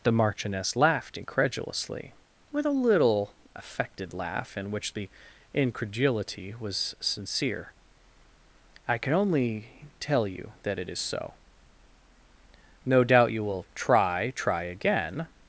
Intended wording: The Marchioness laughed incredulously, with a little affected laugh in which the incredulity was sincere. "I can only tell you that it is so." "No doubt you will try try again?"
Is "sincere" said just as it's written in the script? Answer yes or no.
yes